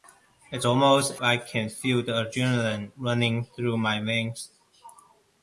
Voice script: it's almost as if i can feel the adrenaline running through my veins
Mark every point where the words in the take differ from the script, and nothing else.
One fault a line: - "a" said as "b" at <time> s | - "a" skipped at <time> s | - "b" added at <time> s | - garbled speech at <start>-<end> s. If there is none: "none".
- "as if" skipped at 1.2 s